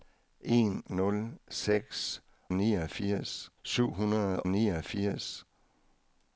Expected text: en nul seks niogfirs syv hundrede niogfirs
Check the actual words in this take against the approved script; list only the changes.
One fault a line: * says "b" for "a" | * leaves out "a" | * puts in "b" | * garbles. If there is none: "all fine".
all fine